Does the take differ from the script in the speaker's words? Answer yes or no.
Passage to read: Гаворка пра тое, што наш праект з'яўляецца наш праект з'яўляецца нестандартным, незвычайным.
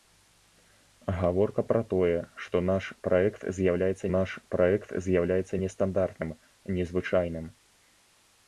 no